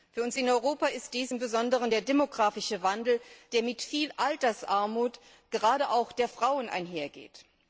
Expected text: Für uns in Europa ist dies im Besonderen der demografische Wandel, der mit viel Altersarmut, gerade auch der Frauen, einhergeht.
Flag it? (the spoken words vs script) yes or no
no